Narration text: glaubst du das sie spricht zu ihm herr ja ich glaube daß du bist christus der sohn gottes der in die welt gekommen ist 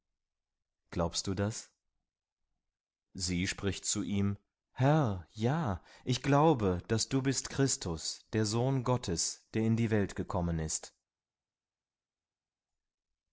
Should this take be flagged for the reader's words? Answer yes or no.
no